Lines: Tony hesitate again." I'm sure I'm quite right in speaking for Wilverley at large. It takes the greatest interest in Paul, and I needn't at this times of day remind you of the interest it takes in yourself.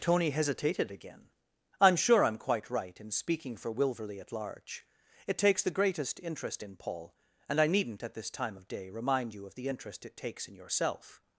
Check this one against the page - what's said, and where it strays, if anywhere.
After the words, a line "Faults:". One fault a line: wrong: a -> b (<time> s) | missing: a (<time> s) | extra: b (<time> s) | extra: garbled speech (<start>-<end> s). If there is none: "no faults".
Tony hesitated again." I'm sure I'm quite right in speaking for Wilverley at large. It takes the greatest interest in Paul, and I needn't at this time of day remind you of the interest it takes in yourself.
Faults:
wrong: hesitate -> hesitated (0.3 s)
wrong: times -> time (8.3 s)